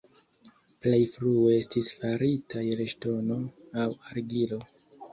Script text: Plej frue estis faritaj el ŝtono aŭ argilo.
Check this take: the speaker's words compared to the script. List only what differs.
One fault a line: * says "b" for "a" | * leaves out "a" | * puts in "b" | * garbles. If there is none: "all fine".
all fine